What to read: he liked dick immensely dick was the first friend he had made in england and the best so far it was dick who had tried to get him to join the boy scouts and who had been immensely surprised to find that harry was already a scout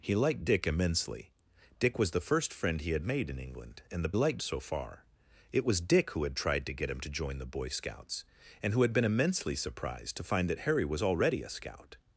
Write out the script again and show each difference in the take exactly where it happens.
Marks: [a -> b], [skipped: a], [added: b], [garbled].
he liked dick immensely dick was the first friend he had made in england and the [best -> liked] so far it was dick who had tried to get him to join the boy scouts and who had been immensely surprised to find that harry was already a scout